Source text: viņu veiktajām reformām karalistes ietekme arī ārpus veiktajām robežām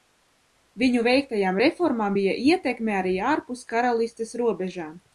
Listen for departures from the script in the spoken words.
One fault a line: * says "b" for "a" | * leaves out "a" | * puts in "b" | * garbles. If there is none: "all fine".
* says "bija" for "karalistes"
* says "karalistes" for "veiktajām"